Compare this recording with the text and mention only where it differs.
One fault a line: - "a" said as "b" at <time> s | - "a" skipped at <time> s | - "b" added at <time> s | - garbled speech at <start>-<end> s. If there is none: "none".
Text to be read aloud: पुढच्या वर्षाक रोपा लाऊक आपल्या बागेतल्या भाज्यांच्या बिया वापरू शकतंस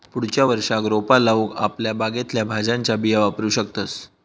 none